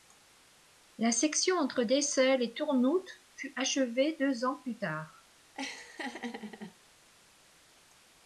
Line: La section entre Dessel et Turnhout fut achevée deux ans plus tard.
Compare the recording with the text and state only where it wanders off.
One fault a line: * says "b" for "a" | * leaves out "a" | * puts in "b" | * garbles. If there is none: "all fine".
all fine